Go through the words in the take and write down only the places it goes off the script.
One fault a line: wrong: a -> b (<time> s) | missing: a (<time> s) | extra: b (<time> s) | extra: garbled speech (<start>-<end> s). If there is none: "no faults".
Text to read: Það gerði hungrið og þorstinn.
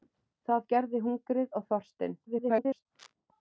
extra: garbled speech (2.3-2.9 s)